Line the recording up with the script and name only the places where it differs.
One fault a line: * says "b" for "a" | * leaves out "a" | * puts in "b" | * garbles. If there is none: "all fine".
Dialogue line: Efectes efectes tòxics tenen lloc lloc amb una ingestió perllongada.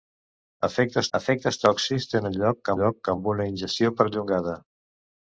all fine